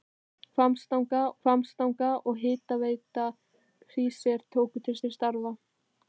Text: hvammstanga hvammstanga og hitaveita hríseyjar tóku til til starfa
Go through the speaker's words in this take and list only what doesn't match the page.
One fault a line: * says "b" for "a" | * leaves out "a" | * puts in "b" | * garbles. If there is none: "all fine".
all fine